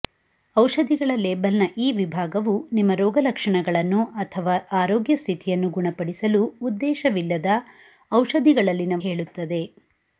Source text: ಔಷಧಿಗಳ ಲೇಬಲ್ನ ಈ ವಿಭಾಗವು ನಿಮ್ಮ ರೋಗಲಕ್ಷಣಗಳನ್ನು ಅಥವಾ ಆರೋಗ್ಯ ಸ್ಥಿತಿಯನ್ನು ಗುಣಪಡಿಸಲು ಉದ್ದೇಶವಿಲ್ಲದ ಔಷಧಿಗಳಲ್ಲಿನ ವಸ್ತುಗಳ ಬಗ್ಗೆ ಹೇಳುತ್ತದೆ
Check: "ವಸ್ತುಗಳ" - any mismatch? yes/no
yes